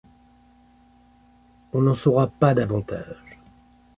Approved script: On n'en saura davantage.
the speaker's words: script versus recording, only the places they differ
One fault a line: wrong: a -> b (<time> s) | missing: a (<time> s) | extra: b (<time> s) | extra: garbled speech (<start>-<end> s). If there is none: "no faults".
extra: pas (2.3 s)